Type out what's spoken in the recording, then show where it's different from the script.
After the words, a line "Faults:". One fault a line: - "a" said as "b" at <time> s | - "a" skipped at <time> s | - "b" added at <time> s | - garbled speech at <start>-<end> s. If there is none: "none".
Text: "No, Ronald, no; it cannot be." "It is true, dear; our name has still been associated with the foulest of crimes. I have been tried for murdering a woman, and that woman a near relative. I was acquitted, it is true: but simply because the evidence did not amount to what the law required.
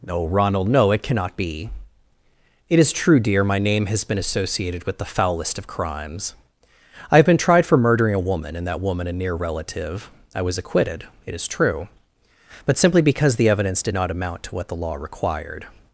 "No, Ronald, no; it cannot be." "It is true, dear; my name has been associated with the foulest of crimes. I have been tried for murdering a woman, and that woman a near relative. I was acquitted, it is true: but simply because the evidence did not amount to what the law required.
Faults:
- "our" said as "my" at 3.4 s
- "still" skipped at 4.1 s